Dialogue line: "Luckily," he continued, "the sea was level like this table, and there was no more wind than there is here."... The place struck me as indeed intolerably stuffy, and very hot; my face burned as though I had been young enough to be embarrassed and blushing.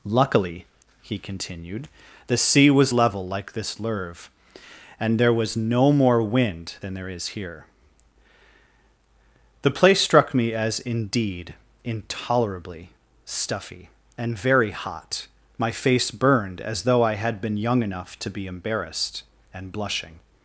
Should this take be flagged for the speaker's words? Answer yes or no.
yes